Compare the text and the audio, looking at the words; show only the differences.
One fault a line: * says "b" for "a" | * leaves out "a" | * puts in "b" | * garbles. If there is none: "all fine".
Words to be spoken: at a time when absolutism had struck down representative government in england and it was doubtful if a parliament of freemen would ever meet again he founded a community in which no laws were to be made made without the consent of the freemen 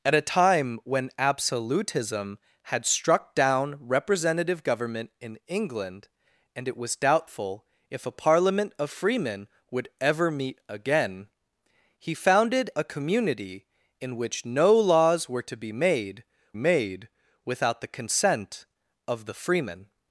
all fine